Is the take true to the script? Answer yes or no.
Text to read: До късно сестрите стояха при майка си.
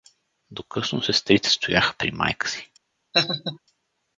yes